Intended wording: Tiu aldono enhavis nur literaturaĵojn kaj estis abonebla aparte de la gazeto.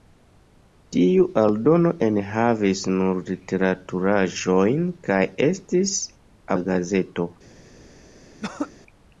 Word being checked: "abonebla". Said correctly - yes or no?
no